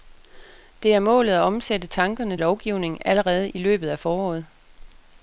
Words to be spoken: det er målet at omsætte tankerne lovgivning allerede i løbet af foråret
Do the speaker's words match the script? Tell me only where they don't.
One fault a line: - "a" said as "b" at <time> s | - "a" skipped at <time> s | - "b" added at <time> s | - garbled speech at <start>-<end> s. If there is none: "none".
none